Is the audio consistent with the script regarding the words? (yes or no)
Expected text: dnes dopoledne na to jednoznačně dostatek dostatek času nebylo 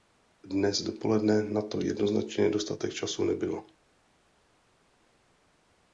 no